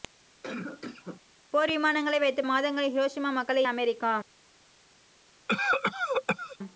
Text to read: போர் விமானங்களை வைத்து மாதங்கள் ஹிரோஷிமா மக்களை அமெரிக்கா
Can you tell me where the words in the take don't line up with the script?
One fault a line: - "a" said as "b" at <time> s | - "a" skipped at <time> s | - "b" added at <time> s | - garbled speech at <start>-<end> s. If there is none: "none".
none